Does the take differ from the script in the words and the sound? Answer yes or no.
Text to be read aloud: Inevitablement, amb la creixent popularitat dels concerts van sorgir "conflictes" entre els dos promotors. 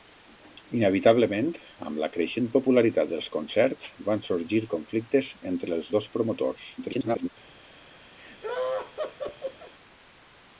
yes